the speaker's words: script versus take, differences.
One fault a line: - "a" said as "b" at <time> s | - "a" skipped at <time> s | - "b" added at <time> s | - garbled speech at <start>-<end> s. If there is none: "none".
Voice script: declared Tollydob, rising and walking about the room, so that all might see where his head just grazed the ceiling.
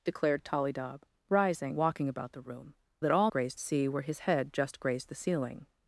- "and" skipped at 1.8 s
- "so" skipped at 2.8 s
- "might" said as "grazed" at 3.3 s